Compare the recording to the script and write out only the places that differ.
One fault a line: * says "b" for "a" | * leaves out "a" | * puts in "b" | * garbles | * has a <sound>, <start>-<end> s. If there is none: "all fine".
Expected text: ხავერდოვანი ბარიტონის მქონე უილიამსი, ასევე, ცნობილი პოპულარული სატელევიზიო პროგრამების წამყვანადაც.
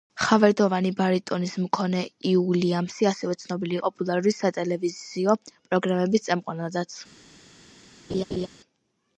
* has a laugh, 8.1-8.5 s